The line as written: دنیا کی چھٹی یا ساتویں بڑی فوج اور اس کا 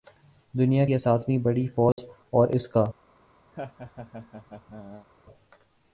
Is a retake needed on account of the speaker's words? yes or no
yes